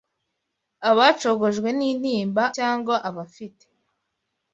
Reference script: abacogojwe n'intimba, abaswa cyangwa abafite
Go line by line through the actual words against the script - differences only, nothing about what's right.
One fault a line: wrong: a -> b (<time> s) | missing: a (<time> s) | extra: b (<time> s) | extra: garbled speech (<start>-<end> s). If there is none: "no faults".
missing: abaswa (2.4 s)